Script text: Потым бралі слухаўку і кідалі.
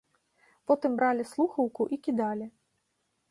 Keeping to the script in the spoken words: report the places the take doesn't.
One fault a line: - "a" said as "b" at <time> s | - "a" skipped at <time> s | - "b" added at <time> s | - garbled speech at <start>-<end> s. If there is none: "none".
none